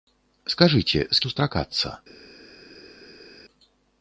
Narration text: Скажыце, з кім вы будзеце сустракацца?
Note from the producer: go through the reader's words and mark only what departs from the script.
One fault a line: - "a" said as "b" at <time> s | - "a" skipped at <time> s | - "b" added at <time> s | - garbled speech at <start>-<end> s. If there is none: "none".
- "кім вы будзеце" skipped at 1.2 s